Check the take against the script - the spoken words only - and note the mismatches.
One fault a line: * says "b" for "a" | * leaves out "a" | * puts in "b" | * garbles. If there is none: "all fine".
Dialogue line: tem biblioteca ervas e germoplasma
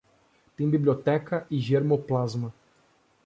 * leaves out "ervas"